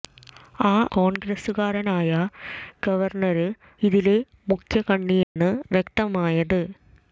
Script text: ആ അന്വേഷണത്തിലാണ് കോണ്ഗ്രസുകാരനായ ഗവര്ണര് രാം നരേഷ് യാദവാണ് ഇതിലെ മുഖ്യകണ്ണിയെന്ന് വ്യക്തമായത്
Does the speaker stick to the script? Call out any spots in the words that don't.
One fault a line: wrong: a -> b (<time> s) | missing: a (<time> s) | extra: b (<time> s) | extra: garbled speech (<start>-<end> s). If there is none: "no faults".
missing: അന്വേഷണത്തിലാണ് (0.9 s)
missing: രാം നരേഷ് യാദവാണ് (3.5 s)